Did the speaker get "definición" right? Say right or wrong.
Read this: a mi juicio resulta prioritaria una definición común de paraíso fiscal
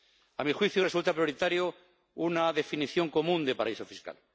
right